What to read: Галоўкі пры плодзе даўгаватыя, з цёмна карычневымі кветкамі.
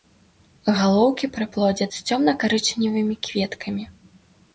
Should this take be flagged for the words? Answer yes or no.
yes